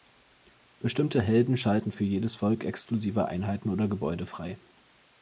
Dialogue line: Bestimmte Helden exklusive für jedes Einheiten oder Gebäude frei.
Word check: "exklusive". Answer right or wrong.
wrong